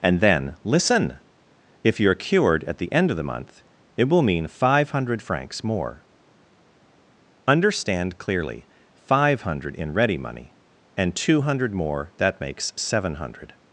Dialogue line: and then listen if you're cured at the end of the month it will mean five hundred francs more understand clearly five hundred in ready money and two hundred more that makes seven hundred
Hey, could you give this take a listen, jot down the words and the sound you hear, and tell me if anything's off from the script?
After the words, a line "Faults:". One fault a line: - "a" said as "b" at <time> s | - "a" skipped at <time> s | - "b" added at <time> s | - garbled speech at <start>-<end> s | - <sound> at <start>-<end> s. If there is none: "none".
and then listen if you're cured at the end of the month it will mean five hundred francs more understand clearly five hundred in ready money and two hundred more that makes seven hundred
Faults:
none